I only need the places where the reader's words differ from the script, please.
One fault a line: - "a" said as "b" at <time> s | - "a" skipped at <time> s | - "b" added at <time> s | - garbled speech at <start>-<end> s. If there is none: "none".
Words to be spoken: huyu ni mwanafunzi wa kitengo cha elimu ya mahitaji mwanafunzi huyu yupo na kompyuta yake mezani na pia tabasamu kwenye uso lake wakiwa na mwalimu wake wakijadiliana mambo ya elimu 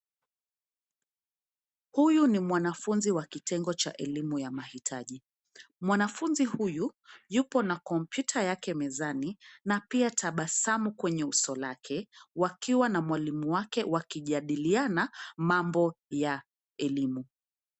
none